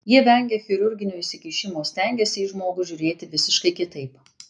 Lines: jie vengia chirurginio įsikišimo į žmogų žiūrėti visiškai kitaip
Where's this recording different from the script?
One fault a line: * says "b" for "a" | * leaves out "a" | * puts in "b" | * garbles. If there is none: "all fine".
* puts in "stengiasi"